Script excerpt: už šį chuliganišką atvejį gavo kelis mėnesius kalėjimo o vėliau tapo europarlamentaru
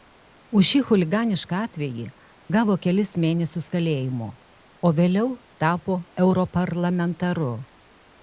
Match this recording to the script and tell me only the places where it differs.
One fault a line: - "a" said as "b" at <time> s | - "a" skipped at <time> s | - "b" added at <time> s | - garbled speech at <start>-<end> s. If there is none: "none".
none